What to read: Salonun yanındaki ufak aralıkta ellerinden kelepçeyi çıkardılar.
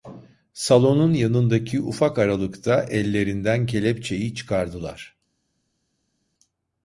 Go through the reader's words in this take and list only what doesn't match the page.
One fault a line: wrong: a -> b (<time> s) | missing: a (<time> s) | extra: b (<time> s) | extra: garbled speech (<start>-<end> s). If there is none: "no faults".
no faults